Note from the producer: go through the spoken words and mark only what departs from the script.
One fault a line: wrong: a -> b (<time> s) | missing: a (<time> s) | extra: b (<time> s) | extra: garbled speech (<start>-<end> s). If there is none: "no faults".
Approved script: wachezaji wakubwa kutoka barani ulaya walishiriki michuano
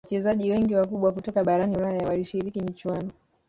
extra: wengi (0.5 s)